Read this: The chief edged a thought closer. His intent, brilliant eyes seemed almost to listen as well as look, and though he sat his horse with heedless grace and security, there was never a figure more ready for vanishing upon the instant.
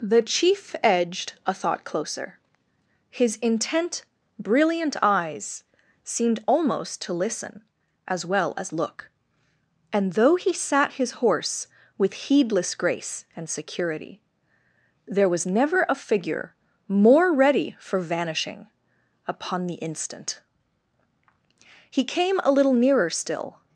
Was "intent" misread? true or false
false